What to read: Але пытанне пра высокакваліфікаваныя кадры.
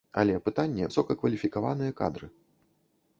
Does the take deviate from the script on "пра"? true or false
true